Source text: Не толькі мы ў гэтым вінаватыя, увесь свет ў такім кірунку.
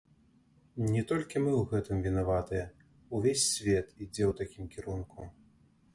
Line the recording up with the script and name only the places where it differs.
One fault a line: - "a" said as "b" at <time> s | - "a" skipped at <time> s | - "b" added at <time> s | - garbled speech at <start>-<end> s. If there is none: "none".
- "ідзе" added at 4.0 s